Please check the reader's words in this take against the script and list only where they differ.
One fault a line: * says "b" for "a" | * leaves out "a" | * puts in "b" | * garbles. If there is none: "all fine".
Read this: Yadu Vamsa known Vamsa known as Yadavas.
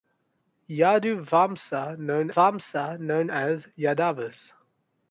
all fine